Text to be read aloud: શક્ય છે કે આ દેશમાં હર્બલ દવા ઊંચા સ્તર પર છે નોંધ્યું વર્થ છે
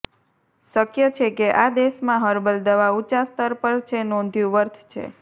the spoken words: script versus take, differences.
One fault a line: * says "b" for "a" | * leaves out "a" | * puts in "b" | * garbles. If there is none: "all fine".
all fine